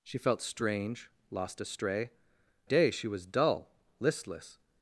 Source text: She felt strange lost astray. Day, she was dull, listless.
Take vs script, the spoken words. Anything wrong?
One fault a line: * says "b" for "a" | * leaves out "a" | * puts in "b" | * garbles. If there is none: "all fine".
all fine